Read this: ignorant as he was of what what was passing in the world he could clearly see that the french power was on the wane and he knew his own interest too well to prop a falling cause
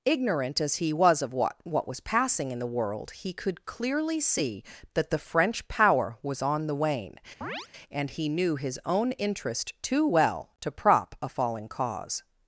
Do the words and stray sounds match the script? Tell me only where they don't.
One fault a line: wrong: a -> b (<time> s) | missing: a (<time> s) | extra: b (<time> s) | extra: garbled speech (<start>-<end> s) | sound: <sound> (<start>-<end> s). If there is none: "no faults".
sound: chirp (7.4-7.7 s)